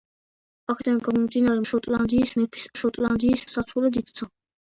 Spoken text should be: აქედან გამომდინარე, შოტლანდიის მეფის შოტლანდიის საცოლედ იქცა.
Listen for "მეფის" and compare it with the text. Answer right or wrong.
right